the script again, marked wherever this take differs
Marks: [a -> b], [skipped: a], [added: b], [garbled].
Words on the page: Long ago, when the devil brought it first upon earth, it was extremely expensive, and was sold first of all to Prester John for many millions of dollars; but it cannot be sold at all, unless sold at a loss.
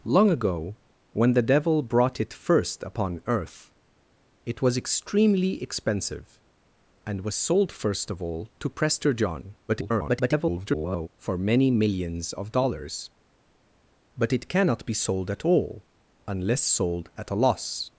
Long ago, when the devil brought it first upon earth, it was extremely expensive, and was sold first of all to Prester John [garbled] for many millions of dollars; but it cannot be sold at all, unless sold at a loss.